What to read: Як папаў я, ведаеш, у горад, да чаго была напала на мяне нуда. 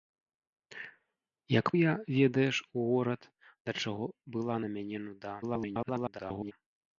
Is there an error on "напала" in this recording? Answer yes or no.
yes